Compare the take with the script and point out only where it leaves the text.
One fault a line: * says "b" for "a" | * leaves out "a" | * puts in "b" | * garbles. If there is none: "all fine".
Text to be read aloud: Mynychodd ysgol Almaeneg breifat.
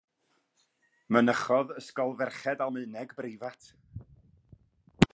* puts in "ferched"